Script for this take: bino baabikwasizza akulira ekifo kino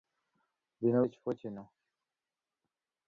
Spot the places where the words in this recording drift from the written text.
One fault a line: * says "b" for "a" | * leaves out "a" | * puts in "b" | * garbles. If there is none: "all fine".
* leaves out "baabikwasizza akulira"